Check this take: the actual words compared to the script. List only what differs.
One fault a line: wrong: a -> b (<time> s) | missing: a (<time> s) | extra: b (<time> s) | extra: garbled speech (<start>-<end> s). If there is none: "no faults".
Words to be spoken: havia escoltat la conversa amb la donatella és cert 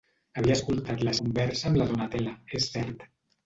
no faults